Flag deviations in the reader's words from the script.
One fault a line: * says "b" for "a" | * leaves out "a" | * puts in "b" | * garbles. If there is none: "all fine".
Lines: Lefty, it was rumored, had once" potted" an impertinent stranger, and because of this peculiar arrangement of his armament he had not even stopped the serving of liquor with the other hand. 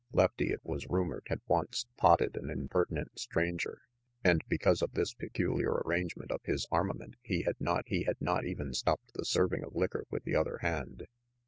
* puts in "he had not"